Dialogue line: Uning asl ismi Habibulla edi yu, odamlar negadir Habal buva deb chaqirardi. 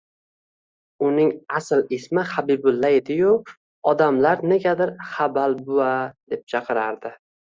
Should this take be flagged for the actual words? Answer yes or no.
no